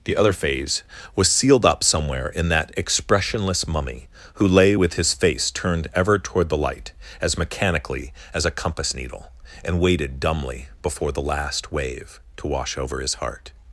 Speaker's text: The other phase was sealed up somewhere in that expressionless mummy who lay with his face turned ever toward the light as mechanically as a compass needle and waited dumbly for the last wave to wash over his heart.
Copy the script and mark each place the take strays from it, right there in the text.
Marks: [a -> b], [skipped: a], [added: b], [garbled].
The other phase was sealed up somewhere in that expressionless mummy who lay with his face turned ever toward the light as mechanically as a compass needle and waited dumbly [for -> before] the last wave to wash over his heart.